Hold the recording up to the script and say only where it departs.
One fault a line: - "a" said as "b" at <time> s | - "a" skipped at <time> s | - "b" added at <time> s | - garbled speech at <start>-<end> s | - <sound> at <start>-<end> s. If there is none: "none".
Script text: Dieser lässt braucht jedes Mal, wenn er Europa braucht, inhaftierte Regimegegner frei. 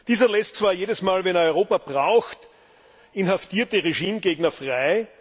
- "braucht" said as "zwar" at 0.5 s